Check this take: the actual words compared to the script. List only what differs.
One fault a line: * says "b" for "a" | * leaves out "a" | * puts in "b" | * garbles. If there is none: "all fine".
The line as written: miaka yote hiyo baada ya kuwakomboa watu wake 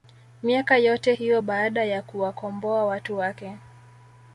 all fine